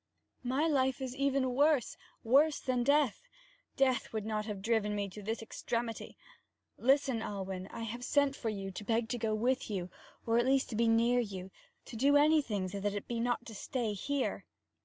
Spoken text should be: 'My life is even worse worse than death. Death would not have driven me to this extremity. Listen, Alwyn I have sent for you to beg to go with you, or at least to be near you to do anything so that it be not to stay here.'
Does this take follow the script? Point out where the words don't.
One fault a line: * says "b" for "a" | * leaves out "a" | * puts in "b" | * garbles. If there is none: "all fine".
all fine